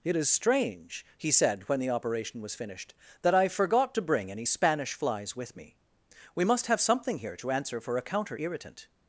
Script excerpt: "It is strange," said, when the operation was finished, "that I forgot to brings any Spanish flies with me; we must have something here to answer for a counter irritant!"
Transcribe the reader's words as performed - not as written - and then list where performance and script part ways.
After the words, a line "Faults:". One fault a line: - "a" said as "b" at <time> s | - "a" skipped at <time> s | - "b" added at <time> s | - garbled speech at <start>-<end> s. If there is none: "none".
"It is strange," he said, when the operation was finished, "that I forgot to bring any Spanish flies with me; we must have something here to answer for a counter irritant!"
Faults:
- "he" added at 1.2 s
- "brings" said as "bring" at 4.0 s